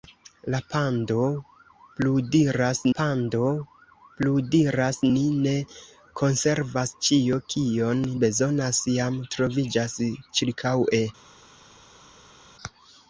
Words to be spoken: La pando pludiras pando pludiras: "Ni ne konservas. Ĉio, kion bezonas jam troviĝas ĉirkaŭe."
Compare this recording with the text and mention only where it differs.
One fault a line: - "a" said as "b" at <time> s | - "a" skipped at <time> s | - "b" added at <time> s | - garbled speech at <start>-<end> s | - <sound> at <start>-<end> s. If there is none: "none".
none